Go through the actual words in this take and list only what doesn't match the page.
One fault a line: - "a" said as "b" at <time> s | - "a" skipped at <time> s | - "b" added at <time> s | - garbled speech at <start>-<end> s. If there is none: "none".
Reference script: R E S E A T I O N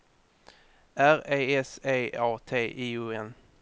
none